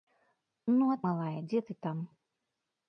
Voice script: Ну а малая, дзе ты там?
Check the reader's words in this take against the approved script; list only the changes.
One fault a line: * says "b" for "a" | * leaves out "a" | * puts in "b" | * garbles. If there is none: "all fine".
all fine